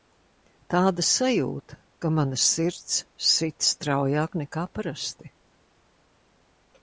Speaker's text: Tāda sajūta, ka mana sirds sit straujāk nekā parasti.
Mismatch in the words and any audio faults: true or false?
false